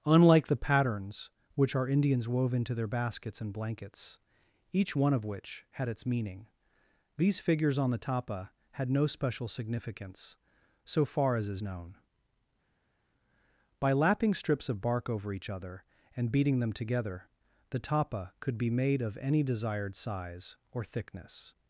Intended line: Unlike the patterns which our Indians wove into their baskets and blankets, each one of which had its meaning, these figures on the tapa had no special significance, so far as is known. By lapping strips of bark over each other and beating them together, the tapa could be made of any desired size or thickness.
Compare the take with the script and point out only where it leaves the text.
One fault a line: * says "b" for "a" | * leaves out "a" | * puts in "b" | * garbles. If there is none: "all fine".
all fine